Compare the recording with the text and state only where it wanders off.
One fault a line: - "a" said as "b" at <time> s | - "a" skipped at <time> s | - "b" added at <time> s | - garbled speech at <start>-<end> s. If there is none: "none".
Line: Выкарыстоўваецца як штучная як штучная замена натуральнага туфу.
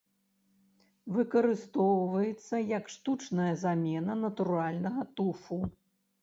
- "як штучная" skipped at 3.5 s